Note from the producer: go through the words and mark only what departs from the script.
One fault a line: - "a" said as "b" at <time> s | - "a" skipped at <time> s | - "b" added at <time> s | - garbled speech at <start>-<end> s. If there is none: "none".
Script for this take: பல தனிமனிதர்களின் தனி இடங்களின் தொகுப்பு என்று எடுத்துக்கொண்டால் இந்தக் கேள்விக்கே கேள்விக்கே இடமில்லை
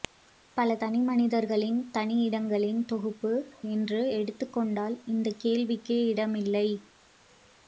- "கேள்விக்கே" skipped at 6.0 s